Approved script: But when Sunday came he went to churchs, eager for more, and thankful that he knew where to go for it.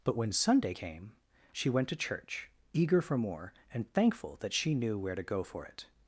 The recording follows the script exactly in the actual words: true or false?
false